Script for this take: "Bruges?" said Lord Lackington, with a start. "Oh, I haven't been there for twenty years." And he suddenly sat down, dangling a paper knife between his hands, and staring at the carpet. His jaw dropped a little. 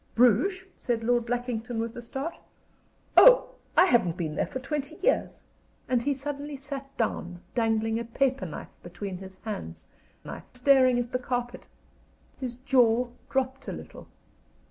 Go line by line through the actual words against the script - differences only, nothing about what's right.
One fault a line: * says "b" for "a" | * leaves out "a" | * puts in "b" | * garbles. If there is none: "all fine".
* says "knife" for "and"